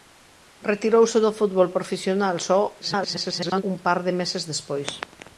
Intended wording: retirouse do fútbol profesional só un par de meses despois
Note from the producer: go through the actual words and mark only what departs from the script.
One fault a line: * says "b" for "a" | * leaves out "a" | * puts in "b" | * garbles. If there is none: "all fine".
* garbles